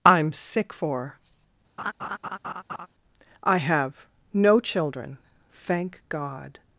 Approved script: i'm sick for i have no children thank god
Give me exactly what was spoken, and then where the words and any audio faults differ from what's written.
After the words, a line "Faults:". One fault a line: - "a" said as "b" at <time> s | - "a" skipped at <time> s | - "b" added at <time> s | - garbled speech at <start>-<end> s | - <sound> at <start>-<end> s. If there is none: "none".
i'm sick for i have no children thank god
Faults:
- laugh at 1.8-2.9 s